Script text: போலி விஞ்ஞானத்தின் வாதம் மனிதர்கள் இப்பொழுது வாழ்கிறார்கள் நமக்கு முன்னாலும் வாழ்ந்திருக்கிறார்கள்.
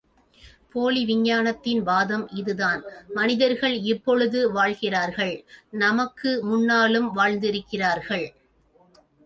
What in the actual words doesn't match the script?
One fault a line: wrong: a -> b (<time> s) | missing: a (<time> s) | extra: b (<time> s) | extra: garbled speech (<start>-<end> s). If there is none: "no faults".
extra: இதுதான் (2.3 s)